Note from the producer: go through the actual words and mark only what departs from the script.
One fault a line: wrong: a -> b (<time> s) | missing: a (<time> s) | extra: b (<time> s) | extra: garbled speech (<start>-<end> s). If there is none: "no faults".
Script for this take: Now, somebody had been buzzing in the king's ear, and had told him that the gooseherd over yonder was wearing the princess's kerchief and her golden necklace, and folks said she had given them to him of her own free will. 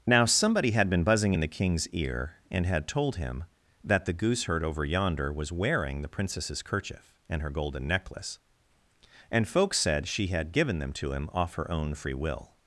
wrong: of -> off (11.3 s)